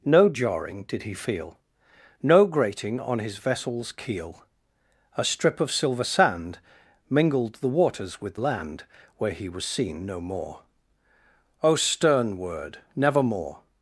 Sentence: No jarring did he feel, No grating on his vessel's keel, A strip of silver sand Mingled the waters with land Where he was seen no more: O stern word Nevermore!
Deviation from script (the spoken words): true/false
false